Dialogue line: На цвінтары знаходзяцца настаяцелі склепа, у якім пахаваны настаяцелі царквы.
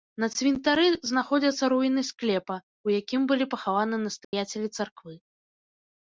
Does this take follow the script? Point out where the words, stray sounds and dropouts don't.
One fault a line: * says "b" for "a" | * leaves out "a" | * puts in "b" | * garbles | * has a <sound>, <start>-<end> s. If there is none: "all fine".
* says "руіны" for "настаяцелі"
* puts in "былі"
* has a dropout, 4.2-4.3 s